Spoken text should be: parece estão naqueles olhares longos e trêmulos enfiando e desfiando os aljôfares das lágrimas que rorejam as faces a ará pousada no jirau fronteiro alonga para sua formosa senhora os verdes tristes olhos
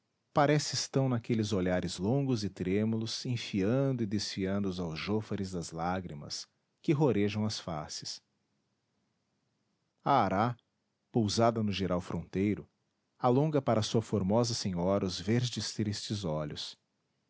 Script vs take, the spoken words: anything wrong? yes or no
no